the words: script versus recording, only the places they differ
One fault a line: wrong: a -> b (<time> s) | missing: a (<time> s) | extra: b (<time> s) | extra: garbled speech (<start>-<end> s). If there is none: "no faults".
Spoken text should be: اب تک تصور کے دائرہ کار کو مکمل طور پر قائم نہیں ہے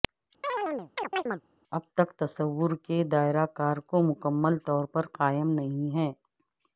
no faults